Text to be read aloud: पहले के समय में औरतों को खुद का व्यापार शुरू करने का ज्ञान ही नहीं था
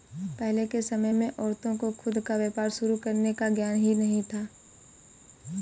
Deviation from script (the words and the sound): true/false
false